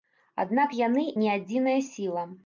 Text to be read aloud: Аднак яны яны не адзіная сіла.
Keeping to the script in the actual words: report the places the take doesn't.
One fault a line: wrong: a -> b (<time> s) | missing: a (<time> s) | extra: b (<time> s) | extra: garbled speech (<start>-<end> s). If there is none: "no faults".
missing: яны (1.0 s)